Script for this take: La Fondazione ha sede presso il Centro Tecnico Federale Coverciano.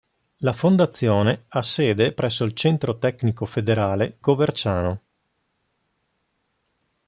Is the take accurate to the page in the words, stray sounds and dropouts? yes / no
yes